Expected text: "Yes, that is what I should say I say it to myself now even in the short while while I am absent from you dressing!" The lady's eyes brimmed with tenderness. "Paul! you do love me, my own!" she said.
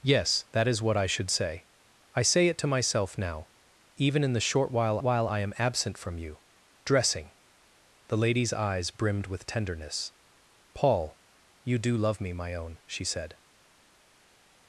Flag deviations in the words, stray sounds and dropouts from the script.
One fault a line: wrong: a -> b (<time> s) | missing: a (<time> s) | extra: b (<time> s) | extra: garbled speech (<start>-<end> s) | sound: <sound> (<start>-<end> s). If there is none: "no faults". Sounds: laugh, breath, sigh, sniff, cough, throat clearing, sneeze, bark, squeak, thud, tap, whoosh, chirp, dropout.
no faults